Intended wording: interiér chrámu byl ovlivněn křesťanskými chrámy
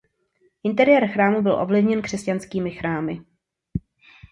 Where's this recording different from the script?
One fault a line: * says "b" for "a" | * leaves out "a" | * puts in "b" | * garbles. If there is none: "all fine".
all fine